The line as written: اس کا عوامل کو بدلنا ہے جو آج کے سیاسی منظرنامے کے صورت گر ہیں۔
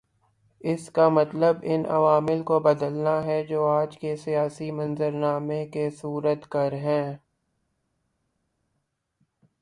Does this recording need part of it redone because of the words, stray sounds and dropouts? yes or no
yes